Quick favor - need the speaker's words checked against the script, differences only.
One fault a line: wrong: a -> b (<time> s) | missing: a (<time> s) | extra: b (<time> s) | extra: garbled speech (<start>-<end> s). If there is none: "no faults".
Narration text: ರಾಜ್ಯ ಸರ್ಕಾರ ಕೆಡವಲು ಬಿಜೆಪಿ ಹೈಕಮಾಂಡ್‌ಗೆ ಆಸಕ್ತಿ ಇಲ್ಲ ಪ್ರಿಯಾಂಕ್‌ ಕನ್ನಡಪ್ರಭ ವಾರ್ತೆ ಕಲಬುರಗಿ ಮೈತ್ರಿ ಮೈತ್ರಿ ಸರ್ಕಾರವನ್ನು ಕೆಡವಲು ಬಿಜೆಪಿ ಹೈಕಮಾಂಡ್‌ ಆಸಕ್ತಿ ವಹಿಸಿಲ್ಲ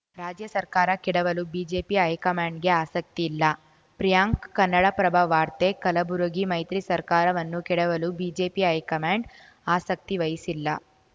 missing: ಮೈತ್ರಿ (6.8 s)